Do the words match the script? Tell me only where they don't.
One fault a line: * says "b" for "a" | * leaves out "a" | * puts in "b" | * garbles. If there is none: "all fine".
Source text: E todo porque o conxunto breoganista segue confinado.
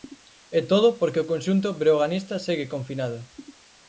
all fine